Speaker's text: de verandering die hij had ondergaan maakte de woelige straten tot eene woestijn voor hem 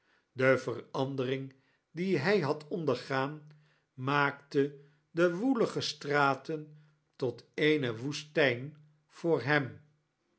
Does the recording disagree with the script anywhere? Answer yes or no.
no